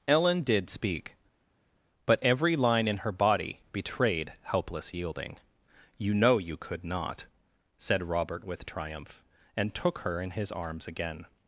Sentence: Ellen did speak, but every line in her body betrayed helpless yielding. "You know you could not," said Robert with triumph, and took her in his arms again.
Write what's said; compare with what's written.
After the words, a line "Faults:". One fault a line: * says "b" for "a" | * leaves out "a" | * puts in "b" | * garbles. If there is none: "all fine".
Ellen did speak, but every line in her body betrayed helpless yielding. "You know you could not," said Robert with triumph, and took her in his arms again.
Faults:
all fine